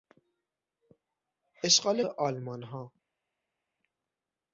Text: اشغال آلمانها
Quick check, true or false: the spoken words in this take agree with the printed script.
true